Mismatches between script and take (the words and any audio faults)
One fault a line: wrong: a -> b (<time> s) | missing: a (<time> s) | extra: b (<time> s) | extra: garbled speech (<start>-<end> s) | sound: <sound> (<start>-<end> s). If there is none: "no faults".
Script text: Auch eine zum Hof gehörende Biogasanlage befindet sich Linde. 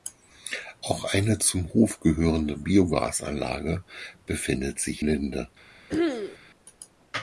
sound: throat clearing (5.9-6.4 s)